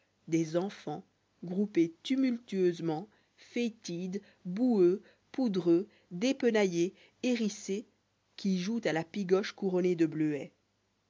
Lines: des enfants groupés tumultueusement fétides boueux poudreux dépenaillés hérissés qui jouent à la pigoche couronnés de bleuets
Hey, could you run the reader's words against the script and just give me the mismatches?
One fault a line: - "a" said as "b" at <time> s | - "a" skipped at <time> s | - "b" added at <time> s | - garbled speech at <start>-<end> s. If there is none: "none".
none